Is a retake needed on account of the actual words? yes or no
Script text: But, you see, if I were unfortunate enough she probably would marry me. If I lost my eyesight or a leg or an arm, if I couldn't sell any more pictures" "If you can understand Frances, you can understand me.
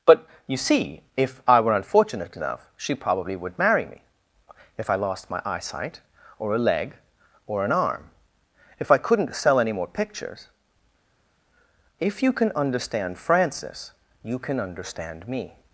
no